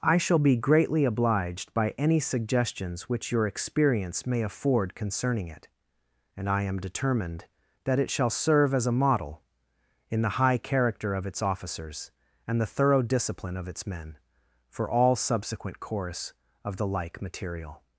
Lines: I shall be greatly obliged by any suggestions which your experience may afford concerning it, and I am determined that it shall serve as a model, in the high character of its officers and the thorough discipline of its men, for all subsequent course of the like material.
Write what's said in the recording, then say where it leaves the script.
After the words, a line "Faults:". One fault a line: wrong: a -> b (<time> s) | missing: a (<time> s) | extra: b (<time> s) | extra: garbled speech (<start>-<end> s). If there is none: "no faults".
I shall be greatly obliged by any suggestions which your experience may afford concerning it, and I am determined that it shall serve as a model, in the high character of its officers and the thorough discipline of its men, for all subsequent course of the like material.
Faults:
no faults